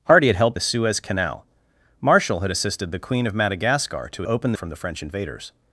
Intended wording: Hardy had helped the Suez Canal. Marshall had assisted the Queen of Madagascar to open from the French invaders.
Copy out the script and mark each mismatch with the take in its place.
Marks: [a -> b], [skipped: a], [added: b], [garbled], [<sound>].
Hardy had helped the Suez Canal. Marshall had assisted the Queen of Madagascar to open from the French invaders.